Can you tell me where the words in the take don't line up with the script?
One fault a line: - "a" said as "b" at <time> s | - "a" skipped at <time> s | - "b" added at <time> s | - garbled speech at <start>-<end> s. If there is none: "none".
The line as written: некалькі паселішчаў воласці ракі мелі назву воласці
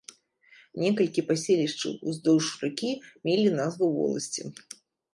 - "воласці" said as "уздоўж" at 2.1 s